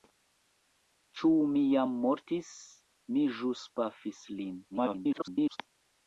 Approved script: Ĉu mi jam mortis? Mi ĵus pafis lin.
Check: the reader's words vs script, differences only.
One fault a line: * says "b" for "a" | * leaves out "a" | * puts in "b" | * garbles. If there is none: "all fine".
* garbles